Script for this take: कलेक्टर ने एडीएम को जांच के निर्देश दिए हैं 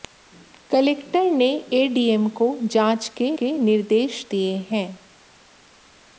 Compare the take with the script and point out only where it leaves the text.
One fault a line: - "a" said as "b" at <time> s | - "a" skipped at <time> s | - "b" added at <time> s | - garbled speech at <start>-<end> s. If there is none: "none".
- "के" added at 3.4 s